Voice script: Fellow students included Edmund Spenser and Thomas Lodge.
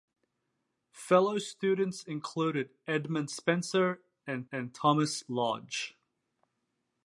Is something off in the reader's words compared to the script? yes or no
yes